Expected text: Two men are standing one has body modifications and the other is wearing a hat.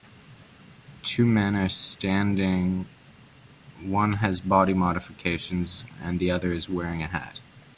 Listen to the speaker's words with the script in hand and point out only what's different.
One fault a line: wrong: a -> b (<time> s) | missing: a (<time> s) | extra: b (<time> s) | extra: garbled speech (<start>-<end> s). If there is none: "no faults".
no faults